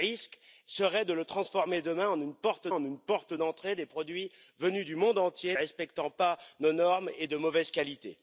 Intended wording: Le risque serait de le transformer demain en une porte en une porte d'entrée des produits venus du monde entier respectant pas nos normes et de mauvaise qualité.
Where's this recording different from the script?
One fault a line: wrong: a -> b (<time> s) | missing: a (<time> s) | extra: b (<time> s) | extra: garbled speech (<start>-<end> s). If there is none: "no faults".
no faults